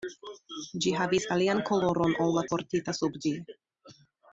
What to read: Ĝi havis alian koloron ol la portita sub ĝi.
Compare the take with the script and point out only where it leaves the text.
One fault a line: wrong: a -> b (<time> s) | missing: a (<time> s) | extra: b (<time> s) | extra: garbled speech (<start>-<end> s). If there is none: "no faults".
no faults